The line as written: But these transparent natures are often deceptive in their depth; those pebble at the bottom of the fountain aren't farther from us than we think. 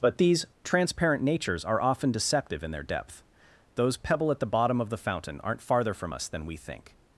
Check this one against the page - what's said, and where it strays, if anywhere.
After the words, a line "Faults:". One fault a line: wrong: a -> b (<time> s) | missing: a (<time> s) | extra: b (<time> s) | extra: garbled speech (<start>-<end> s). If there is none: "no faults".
But these transparent natures are often deceptive in their depth; those pebble at the bottom of the fountain aren't farther from us than we think.
Faults:
no faults